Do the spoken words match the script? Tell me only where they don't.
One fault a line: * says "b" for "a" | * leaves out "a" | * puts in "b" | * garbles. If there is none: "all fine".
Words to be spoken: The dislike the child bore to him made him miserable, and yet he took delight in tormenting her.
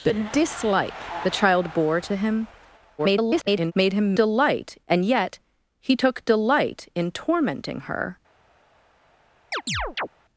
* garbles
* says "delight" for "miserable"